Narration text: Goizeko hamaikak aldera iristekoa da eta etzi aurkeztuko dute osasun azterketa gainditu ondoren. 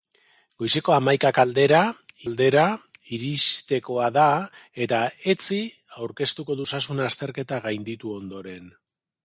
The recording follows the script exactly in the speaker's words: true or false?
false